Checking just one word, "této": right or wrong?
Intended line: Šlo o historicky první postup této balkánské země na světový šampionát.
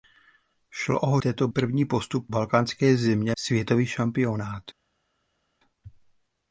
wrong